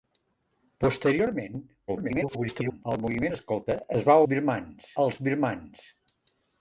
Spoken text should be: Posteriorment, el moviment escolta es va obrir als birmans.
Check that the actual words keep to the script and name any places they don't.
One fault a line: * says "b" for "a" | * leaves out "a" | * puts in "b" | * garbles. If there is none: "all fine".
* garbles
* says "birmans" for "obrir"